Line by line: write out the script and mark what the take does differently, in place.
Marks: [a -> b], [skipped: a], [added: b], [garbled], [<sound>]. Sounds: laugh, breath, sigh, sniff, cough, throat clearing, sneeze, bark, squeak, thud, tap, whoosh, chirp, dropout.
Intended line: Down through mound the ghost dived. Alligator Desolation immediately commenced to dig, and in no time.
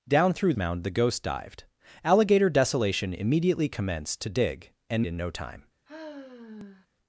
Down through mound the ghost dived. Alligator Desolation immediately commenced to dig, and in no time. [sigh]